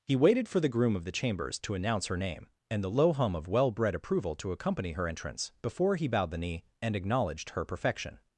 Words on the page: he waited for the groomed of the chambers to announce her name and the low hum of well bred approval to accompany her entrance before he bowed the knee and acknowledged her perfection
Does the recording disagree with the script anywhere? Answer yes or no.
yes